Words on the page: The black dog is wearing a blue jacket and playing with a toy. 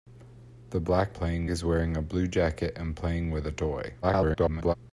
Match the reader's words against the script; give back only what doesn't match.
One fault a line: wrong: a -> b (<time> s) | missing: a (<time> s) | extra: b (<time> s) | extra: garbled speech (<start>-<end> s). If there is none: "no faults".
wrong: dog -> playing (1.1 s)
extra: garbled speech (4.0-4.7 s)